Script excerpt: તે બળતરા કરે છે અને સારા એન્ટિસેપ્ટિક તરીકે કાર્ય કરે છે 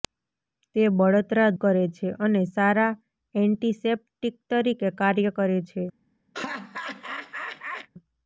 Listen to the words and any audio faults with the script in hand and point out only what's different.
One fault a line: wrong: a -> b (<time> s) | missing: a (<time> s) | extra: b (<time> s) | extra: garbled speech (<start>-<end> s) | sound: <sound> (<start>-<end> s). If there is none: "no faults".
sound: laugh (6.3-7.9 s)